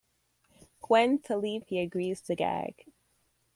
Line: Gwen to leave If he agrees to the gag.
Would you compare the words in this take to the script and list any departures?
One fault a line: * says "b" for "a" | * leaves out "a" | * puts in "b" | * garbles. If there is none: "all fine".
all fine